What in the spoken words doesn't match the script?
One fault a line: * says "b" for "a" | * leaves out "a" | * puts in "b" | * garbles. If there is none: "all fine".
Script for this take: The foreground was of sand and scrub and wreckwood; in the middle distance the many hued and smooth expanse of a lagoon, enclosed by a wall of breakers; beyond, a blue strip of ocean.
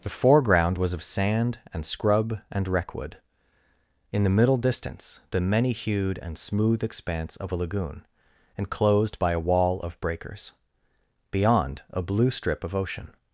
all fine